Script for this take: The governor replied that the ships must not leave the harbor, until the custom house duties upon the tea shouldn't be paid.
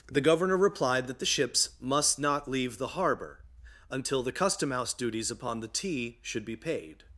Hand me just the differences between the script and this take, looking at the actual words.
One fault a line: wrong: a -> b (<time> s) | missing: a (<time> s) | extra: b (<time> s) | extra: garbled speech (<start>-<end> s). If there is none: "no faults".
wrong: shouldn't -> should (6.2 s)